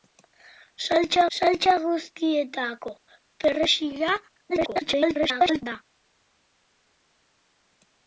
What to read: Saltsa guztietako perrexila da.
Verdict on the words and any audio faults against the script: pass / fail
fail